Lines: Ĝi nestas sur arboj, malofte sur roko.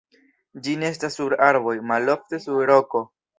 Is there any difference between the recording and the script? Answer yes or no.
no